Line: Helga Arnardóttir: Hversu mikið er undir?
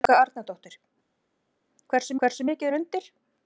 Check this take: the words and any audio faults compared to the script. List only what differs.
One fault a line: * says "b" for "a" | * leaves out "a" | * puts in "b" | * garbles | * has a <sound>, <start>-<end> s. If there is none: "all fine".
* puts in "Hversu"